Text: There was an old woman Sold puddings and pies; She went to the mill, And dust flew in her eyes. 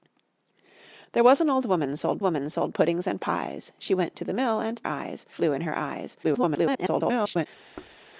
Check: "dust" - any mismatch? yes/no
yes